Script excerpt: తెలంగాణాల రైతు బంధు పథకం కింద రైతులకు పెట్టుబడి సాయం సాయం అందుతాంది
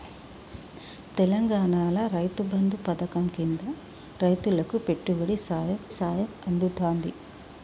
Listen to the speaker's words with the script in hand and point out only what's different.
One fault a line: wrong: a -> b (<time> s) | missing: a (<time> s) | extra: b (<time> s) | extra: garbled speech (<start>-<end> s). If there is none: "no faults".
no faults